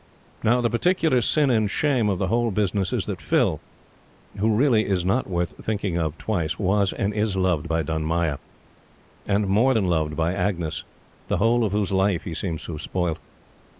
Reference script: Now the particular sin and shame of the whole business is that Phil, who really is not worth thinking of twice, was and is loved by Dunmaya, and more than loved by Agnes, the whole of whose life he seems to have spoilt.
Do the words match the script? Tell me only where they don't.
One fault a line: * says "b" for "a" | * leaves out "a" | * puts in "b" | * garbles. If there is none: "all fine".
all fine